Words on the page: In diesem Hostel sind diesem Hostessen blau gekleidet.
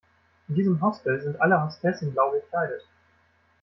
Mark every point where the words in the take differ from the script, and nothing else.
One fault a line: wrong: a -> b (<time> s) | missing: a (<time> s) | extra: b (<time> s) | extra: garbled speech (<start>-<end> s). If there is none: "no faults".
wrong: diesem -> alle (1.4 s)